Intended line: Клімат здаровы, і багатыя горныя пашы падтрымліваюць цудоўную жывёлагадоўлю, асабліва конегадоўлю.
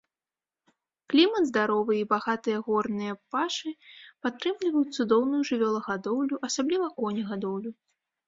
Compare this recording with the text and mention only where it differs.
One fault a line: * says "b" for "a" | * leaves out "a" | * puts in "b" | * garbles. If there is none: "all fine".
all fine